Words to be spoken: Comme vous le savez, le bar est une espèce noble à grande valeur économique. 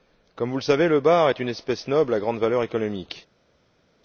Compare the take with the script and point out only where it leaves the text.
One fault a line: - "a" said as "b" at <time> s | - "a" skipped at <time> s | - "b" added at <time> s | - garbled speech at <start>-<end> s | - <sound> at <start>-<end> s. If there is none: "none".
none